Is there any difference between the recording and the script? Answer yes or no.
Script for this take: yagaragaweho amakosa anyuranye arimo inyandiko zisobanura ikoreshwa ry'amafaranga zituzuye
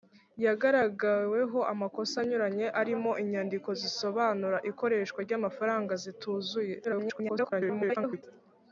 yes